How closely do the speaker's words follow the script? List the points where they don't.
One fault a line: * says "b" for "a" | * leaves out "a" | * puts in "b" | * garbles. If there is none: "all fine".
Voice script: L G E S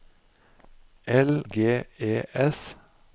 all fine